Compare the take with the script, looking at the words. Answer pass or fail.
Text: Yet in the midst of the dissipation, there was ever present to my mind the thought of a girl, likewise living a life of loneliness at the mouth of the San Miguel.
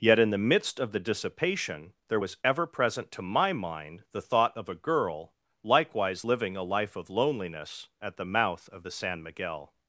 pass